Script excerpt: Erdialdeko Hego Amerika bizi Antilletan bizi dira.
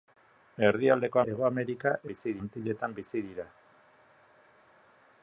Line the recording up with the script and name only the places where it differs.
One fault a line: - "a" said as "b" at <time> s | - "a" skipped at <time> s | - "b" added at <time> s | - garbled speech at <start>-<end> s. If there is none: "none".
none